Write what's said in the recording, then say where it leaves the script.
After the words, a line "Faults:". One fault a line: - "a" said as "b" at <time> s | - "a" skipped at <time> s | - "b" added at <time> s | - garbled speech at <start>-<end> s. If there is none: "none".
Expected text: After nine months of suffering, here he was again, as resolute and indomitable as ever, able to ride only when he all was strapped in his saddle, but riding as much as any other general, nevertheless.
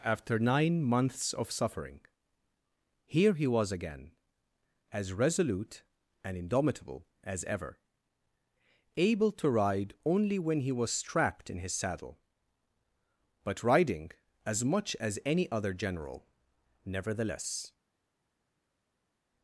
After nine months of suffering, here he was again, as resolute and indomitable as ever, able to ride only when he was strapped in his saddle, but riding as much as any other general, nevertheless.
Faults:
- "all" skipped at 10.7 s